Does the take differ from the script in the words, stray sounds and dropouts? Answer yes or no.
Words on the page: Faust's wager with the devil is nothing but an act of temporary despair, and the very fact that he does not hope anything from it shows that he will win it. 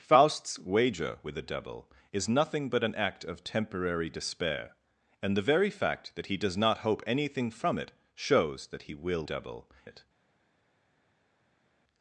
yes